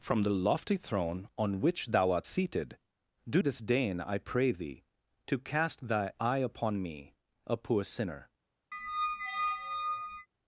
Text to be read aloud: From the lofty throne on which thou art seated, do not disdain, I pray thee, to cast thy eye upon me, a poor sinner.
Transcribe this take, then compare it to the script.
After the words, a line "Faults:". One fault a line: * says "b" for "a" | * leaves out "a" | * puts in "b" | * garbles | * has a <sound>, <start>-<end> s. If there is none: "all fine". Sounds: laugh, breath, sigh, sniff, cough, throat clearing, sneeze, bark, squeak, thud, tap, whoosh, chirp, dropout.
From the lofty throne on which thou art seated, do disdain, I pray thee, to cast thy eye upon me, a poor sinner.
Faults:
* leaves out "not"
* has a squeak, 8.7-10.3 s